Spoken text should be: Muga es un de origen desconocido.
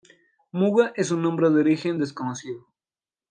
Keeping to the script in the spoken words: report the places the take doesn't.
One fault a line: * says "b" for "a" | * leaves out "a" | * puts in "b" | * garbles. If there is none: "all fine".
* puts in "nombre"